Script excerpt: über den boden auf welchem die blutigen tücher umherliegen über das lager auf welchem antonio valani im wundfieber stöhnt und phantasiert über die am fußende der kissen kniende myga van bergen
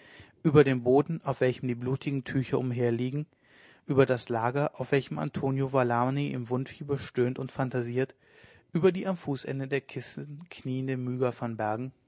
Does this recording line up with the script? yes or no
yes